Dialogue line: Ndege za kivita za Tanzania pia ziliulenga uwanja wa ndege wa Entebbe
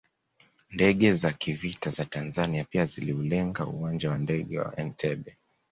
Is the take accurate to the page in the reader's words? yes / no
yes